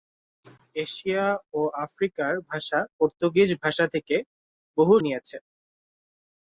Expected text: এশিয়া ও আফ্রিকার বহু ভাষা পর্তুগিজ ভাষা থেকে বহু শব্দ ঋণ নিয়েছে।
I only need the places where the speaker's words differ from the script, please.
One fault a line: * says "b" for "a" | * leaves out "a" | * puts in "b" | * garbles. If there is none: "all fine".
* leaves out "বহু"
* leaves out "শব্দ ঋণ"